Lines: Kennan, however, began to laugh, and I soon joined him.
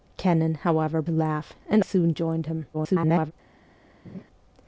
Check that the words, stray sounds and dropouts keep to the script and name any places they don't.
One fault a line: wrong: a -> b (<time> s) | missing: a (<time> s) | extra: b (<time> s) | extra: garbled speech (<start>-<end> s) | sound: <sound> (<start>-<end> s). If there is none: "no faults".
missing: began (1.0 s)
missing: I (1.8 s)
extra: garbled speech (2.7-3.3 s)
sound: laugh (4.0-4.2 s)